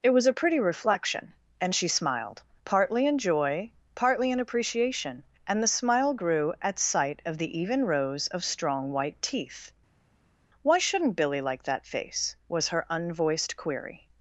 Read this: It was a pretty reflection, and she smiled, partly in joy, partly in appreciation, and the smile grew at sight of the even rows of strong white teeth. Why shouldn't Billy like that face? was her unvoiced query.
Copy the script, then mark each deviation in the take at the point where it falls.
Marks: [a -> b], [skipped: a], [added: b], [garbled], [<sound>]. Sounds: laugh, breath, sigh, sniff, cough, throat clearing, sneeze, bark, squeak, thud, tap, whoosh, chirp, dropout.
It was a pretty reflection, and she smiled, partly in joy, partly in appreciation, and the smile grew at sight of the even rows of strong white teeth. Why shouldn't Billy like that face? was her unvoiced query.